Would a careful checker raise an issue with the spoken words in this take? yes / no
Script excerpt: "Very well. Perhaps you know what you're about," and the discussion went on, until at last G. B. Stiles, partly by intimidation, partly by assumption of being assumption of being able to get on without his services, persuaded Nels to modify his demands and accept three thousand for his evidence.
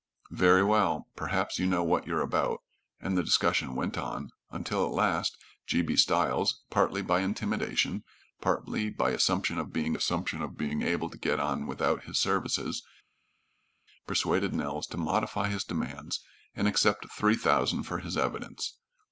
no